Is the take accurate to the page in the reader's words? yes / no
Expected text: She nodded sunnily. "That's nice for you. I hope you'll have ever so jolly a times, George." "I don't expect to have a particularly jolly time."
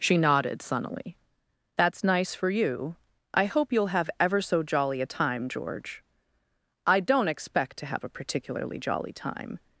no